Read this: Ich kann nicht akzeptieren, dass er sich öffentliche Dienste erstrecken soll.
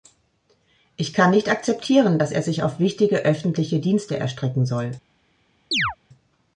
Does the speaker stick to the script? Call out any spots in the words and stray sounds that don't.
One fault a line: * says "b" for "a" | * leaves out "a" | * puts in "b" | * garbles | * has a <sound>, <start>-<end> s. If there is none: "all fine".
* puts in "auf wichtige"
* has a chirp, 5.7-6.0 s